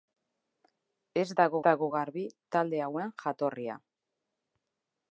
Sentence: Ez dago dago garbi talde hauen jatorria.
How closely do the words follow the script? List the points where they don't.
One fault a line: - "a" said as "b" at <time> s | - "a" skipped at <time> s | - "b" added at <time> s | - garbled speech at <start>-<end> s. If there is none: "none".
none